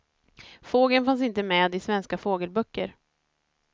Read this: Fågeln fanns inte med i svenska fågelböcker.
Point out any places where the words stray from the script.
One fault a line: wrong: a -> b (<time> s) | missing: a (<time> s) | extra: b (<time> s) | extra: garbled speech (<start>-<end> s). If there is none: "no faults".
no faults